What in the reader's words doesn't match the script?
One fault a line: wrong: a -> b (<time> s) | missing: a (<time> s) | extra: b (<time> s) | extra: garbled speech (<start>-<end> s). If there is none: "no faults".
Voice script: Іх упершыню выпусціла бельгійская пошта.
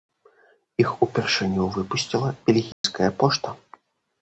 no faults